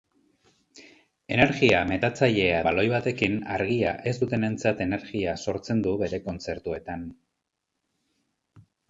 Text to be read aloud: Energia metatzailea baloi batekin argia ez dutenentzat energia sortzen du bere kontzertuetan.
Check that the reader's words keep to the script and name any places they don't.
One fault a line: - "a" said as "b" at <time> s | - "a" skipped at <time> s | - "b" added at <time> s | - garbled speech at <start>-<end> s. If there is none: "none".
none